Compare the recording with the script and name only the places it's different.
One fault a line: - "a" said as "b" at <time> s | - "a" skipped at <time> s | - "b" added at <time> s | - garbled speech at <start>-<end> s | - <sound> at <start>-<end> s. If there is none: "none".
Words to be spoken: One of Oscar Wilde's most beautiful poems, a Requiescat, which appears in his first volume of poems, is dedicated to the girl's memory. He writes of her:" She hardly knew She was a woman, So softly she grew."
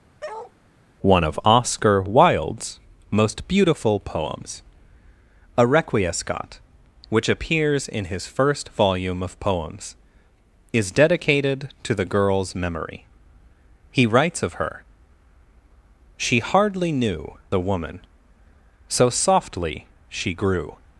- bark at 0.2-0.5 s
- "She was" skipped at 17.4 s